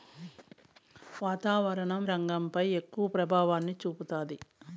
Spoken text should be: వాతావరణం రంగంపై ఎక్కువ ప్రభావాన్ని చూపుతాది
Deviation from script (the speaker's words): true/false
false